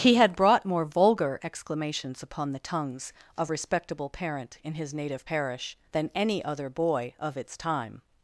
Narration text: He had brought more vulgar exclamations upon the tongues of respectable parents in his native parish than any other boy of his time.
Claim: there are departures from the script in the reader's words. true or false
true